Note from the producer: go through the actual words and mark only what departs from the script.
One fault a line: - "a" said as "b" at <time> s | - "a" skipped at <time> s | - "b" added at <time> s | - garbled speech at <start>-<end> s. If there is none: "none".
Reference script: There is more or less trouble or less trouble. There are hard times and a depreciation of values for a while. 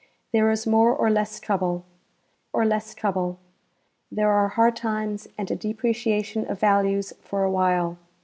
none